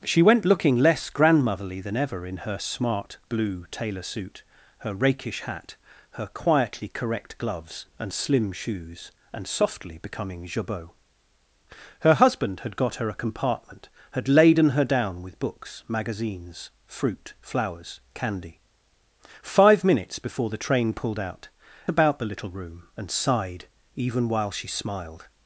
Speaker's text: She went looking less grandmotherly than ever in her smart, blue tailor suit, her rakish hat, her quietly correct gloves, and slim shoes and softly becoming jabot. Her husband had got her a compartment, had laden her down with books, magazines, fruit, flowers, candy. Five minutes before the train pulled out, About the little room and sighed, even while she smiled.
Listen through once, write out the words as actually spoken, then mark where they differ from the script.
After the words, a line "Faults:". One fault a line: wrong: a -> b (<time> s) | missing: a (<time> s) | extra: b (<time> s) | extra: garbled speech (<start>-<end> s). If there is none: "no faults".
She went looking less grandmotherly than ever in her smart, blue tailor suit, her rakish hat, her quietly correct gloves, and slim shoes and softly becoming jabot. Her husband had got her a compartment, had laden her down with books, magazines, fruit, flowers, candy. Five minutes before the train pulled out, About the little room and sighed, even while she smiled.
Faults:
no faults